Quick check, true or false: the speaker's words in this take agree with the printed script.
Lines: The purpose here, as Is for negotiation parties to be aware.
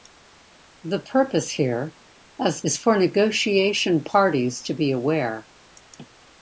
true